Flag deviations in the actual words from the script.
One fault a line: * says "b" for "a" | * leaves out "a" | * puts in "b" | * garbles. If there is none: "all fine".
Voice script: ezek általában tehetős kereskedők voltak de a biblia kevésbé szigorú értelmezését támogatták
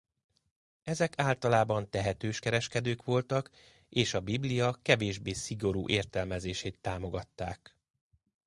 * says "és" for "de"